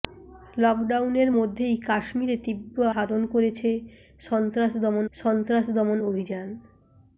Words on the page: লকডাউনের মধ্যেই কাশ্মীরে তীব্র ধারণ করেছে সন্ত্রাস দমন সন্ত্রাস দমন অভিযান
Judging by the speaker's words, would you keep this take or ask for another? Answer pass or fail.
pass